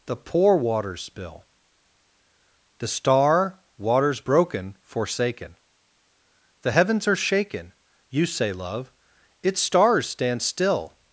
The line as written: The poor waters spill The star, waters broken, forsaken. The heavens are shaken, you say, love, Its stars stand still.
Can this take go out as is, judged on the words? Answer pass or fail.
pass